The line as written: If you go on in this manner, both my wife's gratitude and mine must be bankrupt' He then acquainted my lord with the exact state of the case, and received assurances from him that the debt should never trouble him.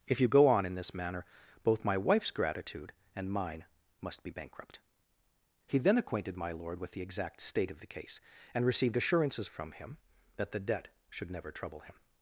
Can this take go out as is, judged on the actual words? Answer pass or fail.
pass